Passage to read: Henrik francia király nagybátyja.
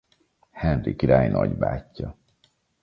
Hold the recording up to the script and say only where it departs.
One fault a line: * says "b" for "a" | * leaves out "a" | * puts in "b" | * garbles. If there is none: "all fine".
* leaves out "francia"